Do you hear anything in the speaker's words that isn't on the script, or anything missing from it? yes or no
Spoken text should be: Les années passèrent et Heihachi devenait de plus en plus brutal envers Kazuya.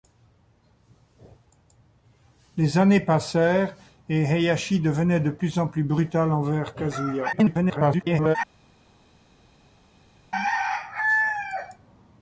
yes